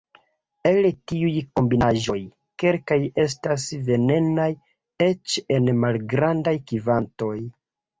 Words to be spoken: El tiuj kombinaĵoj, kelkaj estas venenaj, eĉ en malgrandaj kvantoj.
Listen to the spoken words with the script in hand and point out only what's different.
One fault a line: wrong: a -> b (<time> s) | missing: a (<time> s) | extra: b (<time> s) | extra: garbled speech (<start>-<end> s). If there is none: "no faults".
no faults